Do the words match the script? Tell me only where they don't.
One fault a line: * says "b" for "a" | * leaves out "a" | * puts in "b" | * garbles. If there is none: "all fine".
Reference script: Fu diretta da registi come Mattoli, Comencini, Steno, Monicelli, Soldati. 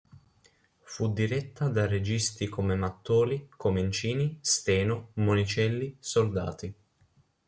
all fine